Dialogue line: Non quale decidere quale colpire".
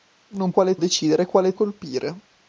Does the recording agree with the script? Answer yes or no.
yes